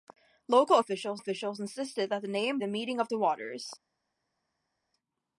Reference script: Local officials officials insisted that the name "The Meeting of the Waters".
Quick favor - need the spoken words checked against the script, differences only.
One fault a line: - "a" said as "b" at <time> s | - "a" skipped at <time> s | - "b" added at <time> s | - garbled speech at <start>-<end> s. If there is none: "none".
none